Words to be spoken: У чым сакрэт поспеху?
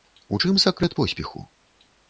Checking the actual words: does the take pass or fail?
pass